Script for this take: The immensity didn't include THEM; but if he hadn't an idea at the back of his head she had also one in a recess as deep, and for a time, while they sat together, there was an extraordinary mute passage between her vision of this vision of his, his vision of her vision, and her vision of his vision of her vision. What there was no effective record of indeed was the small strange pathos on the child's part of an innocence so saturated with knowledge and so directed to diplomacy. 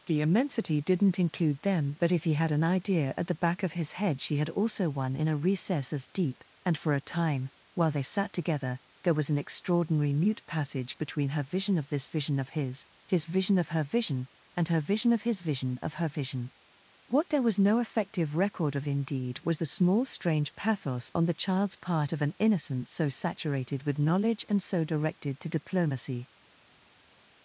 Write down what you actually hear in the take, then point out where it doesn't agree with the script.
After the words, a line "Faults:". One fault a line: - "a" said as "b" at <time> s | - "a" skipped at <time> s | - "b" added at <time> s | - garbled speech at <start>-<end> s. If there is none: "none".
The immensity didn't include THEM; but if he had an idea at the back of his head she had also one in a recess as deep, and for a time, while they sat together, there was an extraordinary mute passage between her vision of this vision of his, his vision of her vision, and her vision of his vision of her vision. What there was no effective record of indeed was the small strange pathos on the child's part of an innocence so saturated with knowledge and so directed to diplomacy.
Faults:
- "hadn't" said as "had" at 2.3 s